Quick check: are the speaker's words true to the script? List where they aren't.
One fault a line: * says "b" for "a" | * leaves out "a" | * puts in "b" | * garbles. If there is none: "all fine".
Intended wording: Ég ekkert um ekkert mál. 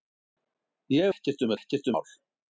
all fine